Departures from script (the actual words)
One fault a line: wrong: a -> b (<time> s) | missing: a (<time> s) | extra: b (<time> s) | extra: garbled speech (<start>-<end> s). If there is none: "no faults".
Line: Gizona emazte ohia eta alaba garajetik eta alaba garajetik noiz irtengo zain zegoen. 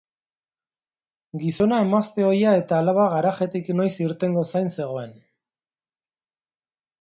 missing: eta alaba garajetik (3.7 s)